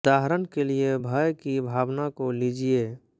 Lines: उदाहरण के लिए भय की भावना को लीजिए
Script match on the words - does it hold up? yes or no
yes